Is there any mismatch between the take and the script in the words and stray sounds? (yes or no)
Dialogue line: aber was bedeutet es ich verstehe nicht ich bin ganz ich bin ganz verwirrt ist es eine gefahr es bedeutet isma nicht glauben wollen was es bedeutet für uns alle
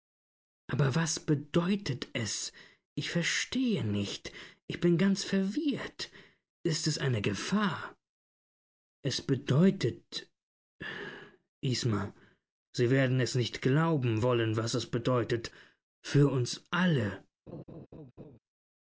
yes